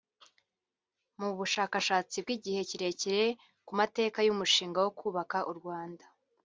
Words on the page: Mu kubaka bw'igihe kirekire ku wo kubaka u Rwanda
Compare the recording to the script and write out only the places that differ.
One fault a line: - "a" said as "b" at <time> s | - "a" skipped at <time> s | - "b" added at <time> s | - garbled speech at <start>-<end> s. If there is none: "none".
- "kubaka" said as "bushakashatsi" at 1.4 s
- "mateka y'umushinga" added at 3.8 s